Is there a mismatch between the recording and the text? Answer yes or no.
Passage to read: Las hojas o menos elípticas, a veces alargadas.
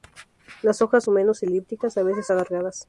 no